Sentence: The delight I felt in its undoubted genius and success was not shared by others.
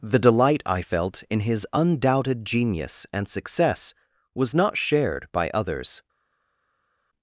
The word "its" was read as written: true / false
false